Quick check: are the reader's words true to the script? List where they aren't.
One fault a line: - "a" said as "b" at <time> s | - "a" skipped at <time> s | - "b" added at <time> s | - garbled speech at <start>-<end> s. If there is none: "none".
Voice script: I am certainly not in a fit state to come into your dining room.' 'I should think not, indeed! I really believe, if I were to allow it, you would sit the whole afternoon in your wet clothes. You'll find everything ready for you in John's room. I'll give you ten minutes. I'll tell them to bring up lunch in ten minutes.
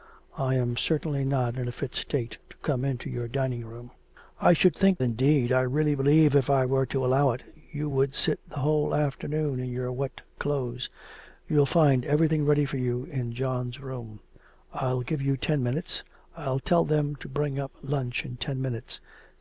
- "not" skipped at 5.0 s